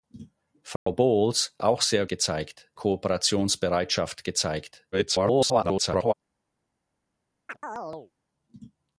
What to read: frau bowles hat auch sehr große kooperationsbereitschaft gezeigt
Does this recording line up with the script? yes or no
no